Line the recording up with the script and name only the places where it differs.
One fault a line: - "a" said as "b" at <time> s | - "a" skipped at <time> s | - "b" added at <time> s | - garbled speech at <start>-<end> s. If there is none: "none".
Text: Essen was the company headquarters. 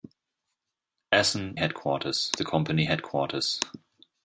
- "was" said as "headquarters" at 1.6 s